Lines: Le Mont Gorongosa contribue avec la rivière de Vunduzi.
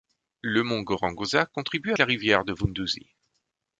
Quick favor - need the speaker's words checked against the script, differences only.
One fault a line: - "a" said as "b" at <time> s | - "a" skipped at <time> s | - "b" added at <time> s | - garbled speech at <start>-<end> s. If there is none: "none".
- "avec" skipped at 1.9 s